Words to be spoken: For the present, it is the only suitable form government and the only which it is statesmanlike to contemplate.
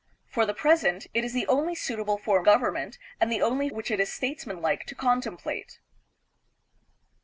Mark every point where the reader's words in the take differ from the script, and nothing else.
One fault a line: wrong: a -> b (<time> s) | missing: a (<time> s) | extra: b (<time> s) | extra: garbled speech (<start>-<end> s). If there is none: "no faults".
no faults